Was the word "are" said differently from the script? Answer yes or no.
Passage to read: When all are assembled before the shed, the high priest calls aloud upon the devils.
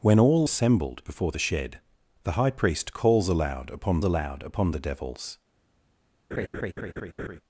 yes